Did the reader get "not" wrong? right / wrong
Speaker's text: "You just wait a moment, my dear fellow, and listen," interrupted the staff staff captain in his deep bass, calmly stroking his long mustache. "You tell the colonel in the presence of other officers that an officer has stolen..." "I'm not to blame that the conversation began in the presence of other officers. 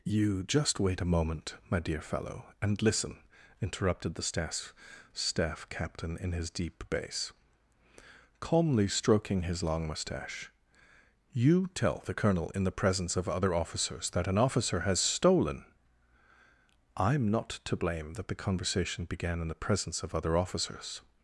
right